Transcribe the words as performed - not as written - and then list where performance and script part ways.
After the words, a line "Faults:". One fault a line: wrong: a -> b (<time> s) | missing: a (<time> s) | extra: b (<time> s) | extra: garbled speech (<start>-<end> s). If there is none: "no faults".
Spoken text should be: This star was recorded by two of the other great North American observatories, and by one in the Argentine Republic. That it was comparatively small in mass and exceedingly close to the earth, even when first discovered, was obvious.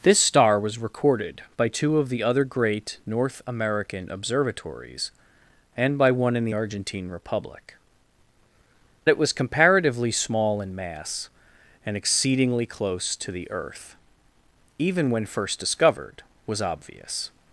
This star was recorded by two of the other great North American observatories, and by one in the Argentine Republic. It was comparatively small in mass and exceedingly close to the earth, even when first discovered, was obvious.
Faults:
missing: That (7.7 s)